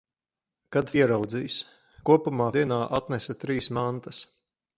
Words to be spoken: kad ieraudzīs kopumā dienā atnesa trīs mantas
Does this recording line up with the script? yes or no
yes